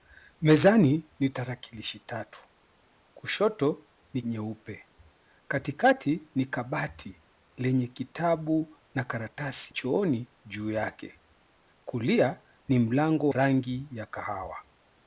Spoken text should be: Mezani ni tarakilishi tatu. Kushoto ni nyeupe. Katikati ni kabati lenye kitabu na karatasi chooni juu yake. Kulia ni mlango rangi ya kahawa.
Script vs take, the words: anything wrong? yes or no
no